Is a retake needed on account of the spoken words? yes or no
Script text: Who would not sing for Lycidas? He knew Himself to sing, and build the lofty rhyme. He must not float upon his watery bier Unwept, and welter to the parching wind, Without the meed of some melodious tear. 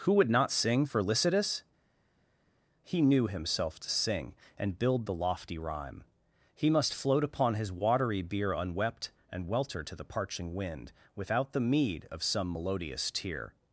yes